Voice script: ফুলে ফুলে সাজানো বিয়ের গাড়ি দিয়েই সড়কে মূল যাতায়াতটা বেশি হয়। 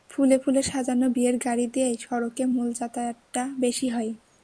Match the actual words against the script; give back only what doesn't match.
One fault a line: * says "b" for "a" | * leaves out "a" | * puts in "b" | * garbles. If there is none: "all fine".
all fine